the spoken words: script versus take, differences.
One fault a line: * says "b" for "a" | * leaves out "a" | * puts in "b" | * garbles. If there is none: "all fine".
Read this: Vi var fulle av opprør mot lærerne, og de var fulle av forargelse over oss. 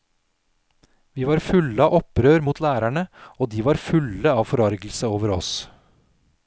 all fine